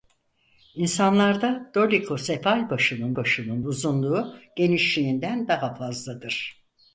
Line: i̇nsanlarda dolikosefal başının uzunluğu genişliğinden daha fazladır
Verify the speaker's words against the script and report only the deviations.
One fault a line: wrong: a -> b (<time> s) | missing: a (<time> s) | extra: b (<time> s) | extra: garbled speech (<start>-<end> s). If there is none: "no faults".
extra: başının (3.1 s)